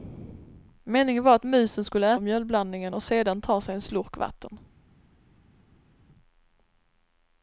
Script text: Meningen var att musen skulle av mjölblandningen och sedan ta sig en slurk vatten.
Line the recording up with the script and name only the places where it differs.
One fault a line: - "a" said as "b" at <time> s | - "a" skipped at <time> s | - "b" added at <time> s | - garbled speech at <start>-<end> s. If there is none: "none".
none